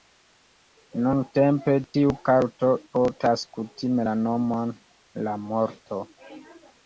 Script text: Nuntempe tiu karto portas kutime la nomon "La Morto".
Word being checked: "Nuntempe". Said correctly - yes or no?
yes